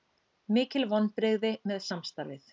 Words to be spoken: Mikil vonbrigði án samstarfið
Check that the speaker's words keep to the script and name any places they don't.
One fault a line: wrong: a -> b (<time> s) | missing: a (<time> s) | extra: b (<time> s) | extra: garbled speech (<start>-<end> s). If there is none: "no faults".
wrong: án -> með (1.7 s)